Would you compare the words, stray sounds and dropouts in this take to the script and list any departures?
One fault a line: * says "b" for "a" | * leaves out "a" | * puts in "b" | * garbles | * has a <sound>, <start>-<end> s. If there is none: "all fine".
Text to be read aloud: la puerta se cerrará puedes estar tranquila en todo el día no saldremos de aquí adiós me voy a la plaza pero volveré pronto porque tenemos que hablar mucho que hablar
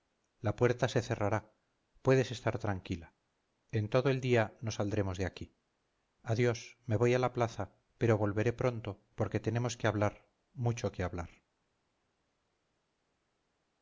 all fine